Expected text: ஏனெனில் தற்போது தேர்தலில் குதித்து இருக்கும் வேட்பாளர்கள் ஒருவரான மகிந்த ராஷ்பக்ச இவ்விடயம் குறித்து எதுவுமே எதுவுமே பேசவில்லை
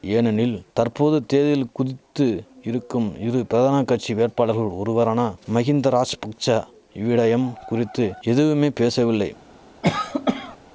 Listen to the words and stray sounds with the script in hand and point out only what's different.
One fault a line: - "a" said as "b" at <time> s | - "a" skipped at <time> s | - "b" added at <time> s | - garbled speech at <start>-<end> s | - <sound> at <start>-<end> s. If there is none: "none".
- "இரு பிரதான கட்சி" added at 3.2 s
- "எதுவுமே" skipped at 8.7 s
- cough at 9.8-10.6 s